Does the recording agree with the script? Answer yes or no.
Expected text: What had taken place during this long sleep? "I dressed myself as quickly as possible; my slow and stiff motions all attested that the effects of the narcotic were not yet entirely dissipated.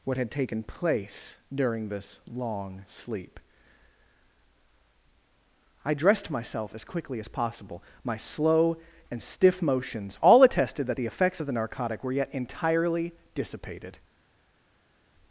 no